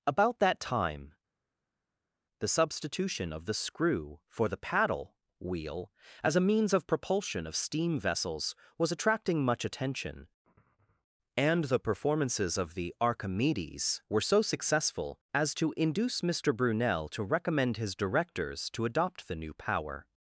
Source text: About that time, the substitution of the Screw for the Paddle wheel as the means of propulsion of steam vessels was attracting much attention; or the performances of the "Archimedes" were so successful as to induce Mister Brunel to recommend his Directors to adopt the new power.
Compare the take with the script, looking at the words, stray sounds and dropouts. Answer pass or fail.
fail